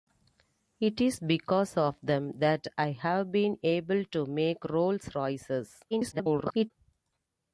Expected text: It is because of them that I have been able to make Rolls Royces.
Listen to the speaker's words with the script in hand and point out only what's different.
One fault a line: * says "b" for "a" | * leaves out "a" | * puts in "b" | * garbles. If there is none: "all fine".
* garbles